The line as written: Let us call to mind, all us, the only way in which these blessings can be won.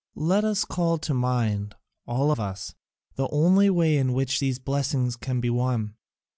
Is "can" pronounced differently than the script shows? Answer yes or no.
no